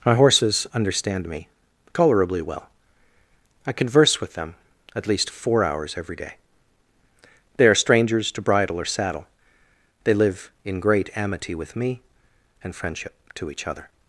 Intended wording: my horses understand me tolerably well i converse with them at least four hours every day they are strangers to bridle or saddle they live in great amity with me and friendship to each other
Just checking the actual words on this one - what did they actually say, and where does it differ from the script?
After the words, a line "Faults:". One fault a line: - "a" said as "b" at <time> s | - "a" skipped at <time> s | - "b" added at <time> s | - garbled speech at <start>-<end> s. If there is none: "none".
my horses understand me tolerably well i converse with them at least four hours every day they are strangers to bridle or saddle they live in great amity with me and friendship to each other
Faults:
none